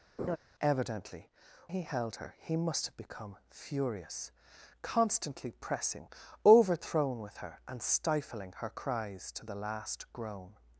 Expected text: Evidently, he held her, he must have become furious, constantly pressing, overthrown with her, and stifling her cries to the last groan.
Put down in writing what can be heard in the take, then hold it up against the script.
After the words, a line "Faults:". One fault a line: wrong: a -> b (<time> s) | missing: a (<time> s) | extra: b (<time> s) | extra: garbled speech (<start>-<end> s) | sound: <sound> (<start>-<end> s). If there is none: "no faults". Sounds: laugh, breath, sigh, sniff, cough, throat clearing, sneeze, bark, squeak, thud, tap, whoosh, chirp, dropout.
Evidently, he held her, he must have become furious, constantly pressing, overthrown with her, and stifling her cries to the last groan.
Faults:
sound: laugh (0.2-0.4 s)